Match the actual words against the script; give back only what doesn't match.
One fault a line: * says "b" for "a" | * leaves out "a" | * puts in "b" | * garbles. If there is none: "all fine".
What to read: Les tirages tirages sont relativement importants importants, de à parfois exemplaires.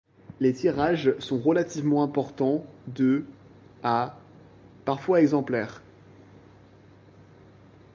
* leaves out "tirages"
* leaves out "importants"